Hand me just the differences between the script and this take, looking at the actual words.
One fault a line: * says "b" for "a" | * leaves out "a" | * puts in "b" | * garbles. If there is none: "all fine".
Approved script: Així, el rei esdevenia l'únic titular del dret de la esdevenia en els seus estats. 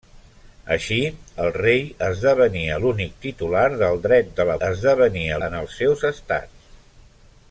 all fine